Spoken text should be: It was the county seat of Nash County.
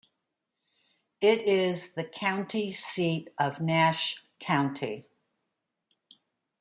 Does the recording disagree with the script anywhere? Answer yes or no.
yes